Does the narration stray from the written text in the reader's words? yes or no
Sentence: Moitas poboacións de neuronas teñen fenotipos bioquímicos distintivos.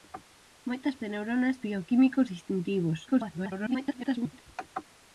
yes